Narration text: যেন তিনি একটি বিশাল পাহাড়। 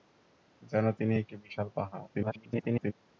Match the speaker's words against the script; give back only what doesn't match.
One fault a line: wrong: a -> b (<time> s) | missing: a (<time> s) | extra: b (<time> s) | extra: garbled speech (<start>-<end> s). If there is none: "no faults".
extra: garbled speech (2.1-2.9 s)